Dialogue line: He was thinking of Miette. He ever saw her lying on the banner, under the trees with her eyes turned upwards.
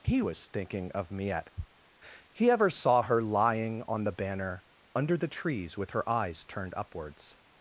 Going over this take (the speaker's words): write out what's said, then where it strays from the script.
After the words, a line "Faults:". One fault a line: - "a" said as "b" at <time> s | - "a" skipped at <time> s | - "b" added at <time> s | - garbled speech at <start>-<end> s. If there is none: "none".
He was thinking of Miette. He ever saw her lying on the banner, under the trees with her eyes turned upwards.
Faults:
none